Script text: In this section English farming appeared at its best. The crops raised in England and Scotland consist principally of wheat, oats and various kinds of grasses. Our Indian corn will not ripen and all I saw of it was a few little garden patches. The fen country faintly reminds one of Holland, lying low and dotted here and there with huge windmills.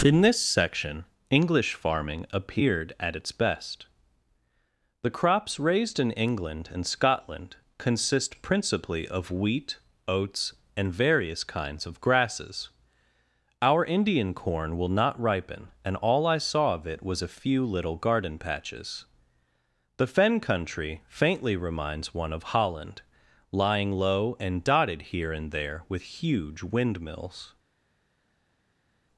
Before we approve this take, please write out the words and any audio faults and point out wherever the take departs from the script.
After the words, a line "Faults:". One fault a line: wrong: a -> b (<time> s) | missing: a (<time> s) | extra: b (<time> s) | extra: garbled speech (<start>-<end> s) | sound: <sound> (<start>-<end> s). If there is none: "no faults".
In this section English farming appeared at its best. The crops raised in England and Scotland consist principally of wheat, oats and various kinds of grasses. Our Indian corn will not ripen and all I saw of it was a few little garden patches. The fen country faintly reminds one of Holland, lying low and dotted here and there with huge windmills.
Faults:
no faults